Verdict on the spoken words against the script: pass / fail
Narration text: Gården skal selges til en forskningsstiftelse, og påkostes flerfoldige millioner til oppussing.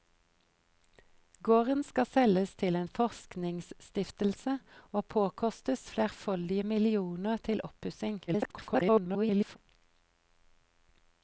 fail